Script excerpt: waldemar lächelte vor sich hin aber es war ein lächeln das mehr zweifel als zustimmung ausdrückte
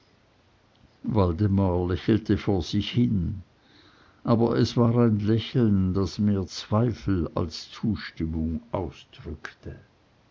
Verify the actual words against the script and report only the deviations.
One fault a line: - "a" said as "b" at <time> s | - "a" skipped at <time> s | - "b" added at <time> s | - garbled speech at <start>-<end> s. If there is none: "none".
none